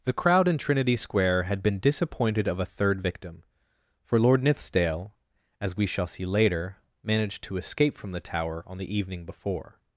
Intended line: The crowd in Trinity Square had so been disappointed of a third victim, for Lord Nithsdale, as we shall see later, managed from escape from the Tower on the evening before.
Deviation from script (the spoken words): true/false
true